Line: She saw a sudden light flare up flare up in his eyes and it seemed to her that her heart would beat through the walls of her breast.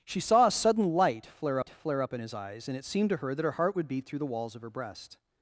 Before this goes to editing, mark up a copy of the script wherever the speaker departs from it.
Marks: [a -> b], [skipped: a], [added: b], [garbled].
She saw a sudden light flare up flare up in his eyes and it seemed to her that her heart would beat through the walls of her breast.